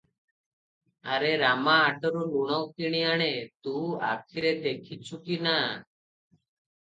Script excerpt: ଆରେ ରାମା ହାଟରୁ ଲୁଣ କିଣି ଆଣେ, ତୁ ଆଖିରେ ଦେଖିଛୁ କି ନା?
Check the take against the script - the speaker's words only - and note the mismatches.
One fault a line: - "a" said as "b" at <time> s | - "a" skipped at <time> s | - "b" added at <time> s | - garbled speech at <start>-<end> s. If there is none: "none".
none